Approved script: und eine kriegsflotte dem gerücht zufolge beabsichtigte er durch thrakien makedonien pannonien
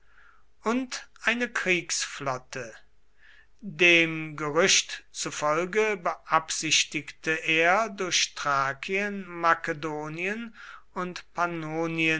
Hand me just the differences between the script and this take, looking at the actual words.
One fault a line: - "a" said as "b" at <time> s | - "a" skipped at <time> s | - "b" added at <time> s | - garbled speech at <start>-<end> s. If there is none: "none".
- "und" added at 10.9 s